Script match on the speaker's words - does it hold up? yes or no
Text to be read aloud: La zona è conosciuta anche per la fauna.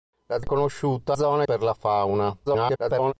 no